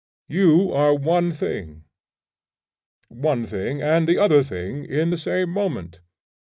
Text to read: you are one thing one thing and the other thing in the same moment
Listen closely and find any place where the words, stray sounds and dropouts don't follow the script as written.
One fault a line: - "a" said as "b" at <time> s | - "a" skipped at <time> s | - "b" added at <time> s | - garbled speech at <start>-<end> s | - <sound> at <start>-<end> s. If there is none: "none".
none